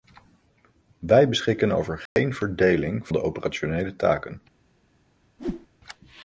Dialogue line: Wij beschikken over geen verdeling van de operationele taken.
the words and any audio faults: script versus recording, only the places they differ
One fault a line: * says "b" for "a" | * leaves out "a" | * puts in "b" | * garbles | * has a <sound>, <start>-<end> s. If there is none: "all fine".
* has a dropout, 2.1-2.2 s
* leaves out "van"
* has a whoosh, 5.4-5.7 s